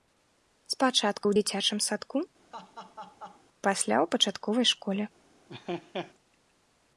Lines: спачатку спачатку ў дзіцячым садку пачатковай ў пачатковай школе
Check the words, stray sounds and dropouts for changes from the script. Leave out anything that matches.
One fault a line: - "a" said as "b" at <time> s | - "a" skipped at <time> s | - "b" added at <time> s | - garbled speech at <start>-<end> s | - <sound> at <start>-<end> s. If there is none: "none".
- "спачатку" skipped at 1.2 s
- laugh at 2.5-3.4 s
- "пачатковай" said as "пасля" at 3.7 s
- laugh at 5.5-6.1 s